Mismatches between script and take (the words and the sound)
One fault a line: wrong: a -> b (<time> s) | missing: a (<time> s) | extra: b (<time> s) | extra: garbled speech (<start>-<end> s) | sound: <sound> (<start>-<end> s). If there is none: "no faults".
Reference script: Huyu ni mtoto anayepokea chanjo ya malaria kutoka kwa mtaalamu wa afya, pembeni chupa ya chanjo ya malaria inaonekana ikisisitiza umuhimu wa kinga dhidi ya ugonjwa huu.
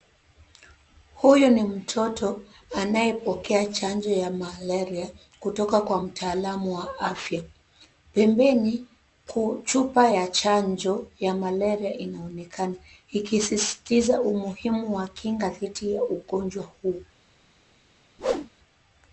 sound: whoosh (18.2-18.5 s)